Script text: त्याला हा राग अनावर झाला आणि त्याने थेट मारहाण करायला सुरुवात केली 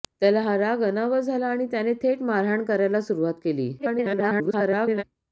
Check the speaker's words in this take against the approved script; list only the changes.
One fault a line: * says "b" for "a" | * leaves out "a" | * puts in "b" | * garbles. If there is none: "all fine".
* garbles